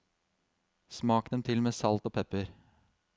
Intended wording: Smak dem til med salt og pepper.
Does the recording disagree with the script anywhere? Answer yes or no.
no